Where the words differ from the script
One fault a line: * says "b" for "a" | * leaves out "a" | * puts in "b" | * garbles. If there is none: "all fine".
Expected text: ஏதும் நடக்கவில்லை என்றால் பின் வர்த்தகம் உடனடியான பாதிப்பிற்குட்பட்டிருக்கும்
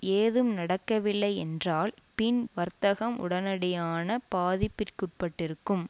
all fine